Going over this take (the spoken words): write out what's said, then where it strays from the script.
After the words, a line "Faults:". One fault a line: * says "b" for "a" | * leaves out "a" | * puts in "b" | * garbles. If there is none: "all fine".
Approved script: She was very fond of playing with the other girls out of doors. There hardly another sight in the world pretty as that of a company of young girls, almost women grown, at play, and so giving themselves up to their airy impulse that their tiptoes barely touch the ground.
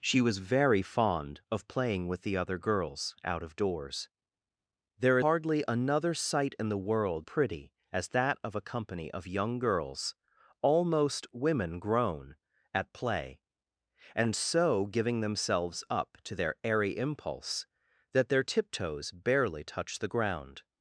She was very fond of playing with the other girls out of doors. There hardly another sight in the world pretty as that of a company of young girls, almost women grown, at play, and so giving themselves up to their airy impulse that their tiptoes barely touch the ground.
Faults:
all fine